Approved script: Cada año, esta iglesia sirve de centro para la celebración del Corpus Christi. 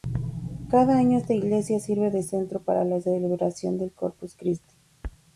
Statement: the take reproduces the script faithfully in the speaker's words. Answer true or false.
true